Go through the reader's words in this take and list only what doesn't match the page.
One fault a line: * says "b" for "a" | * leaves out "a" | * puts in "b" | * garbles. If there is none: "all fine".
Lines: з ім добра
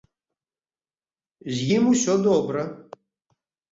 * puts in "усё"